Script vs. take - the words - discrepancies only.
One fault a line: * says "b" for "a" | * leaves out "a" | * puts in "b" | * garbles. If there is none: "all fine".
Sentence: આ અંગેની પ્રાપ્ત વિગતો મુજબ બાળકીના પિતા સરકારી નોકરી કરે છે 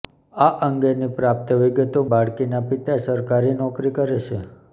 * leaves out "મુજબ"